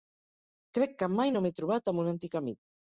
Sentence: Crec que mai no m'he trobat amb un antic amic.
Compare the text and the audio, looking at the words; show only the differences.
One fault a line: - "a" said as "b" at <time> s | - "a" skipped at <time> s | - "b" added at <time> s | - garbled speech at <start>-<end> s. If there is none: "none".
none